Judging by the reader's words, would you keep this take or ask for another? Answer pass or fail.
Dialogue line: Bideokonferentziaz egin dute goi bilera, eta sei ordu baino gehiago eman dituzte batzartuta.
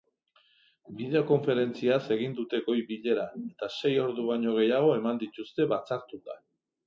pass